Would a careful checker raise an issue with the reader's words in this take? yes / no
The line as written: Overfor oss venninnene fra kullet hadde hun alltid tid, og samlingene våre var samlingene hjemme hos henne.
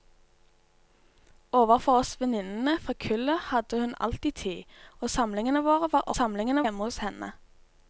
no